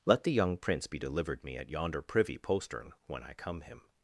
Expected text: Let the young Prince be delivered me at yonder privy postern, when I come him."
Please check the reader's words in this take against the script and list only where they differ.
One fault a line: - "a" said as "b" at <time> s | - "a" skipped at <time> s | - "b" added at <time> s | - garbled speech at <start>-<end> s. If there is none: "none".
none